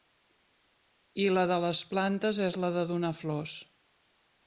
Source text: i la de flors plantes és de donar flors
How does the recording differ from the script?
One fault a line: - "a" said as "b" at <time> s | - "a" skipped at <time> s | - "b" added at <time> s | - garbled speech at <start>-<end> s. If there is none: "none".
- "flors" said as "les" at 1.6 s
- "la" added at 2.6 s